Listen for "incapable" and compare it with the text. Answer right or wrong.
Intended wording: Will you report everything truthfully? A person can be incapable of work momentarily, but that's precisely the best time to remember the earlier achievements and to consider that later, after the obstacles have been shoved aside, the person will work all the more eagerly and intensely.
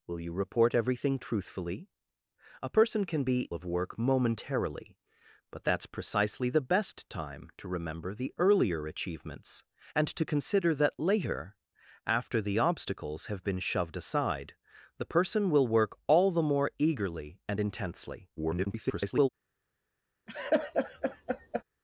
wrong